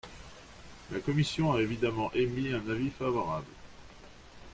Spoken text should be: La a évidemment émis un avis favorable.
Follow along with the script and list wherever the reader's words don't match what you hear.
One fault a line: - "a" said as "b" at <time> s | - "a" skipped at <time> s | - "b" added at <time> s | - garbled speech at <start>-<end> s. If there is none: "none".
- "commission" added at 1.0 s